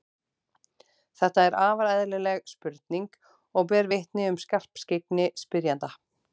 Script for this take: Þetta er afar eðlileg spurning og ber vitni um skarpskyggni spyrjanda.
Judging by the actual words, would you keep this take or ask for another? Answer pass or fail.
pass